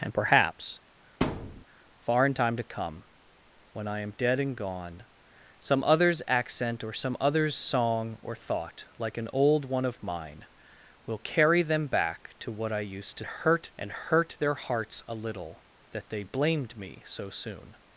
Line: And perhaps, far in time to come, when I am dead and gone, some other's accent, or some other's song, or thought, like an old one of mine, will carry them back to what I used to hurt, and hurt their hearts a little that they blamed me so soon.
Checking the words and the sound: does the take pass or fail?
fail